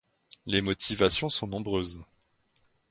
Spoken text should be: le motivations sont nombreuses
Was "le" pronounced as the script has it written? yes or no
no